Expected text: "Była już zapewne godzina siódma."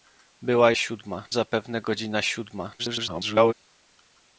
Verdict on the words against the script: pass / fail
fail